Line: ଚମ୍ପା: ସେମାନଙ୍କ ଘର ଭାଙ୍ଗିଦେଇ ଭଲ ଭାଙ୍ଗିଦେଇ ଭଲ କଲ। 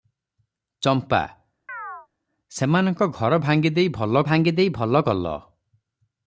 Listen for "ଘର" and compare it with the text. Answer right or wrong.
right